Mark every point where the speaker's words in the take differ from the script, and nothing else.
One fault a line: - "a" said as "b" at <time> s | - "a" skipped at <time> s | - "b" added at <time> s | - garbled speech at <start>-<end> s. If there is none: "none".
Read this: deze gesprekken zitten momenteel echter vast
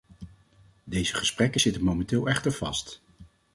none